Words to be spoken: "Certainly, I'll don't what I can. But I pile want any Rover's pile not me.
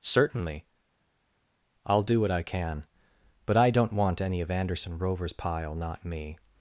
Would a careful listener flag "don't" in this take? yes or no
yes